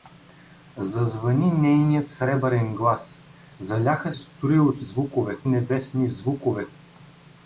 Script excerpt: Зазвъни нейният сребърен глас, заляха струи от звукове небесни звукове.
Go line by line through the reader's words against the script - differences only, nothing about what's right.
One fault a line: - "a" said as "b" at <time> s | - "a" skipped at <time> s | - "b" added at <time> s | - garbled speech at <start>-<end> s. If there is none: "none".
none